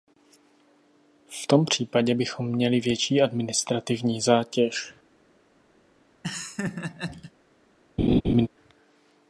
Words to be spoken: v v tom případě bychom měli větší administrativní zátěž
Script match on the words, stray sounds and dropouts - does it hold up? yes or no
no